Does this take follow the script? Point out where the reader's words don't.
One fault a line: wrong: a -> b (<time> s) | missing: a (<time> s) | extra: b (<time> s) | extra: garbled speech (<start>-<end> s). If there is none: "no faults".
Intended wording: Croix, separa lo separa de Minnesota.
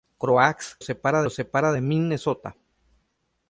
no faults